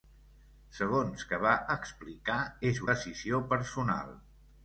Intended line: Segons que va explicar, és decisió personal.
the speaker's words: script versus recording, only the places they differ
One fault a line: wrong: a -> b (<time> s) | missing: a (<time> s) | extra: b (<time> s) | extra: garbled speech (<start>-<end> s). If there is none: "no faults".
no faults